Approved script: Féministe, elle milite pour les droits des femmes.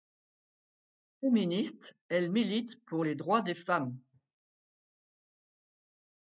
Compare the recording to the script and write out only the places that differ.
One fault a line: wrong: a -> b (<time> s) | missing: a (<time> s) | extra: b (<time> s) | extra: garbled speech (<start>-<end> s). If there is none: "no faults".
no faults